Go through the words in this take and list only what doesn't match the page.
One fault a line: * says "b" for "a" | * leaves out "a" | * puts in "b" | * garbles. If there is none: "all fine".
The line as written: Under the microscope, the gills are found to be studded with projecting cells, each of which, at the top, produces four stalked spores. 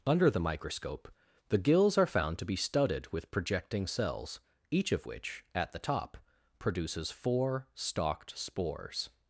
all fine